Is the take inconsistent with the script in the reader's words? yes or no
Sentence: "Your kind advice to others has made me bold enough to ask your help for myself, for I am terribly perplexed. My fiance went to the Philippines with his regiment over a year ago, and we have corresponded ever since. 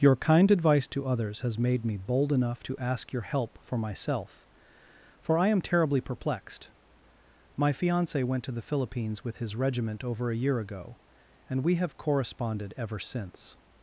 no